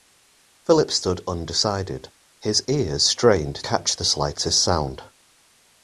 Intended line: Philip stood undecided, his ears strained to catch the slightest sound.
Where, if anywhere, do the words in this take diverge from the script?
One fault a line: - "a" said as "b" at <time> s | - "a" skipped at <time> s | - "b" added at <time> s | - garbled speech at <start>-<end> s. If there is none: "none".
- "to" skipped at 3.6 s